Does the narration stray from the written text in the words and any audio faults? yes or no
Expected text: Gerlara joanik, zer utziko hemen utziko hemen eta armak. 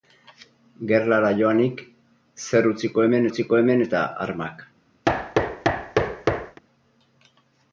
yes